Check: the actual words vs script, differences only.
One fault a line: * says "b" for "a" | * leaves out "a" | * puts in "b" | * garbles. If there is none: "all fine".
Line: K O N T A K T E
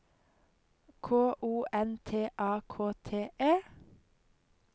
all fine